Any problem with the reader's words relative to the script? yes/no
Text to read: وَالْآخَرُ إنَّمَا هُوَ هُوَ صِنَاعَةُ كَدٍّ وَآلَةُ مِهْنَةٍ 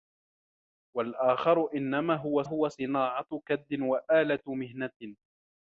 no